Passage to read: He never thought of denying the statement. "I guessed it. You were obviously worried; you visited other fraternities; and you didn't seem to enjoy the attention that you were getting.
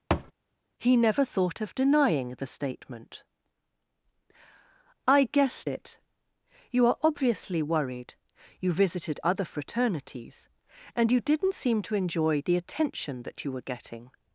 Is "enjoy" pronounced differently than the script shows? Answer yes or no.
no